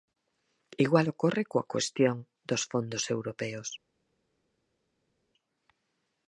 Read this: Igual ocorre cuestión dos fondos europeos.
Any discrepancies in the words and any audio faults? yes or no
yes